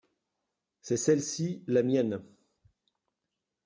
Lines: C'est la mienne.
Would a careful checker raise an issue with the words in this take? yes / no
yes